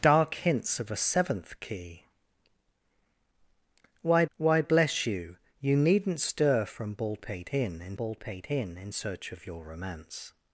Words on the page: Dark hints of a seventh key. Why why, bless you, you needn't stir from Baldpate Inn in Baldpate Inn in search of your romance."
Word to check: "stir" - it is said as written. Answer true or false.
true